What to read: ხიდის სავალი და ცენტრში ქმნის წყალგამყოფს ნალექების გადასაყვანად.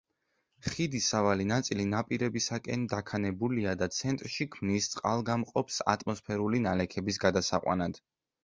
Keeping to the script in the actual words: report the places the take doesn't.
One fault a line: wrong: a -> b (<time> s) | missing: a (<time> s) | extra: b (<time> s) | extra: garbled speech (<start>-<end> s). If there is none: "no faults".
extra: ნაწილი ნაპირებისაკენ დაქანებულია (1.5 s)
extra: ატმოსფერული (6.0 s)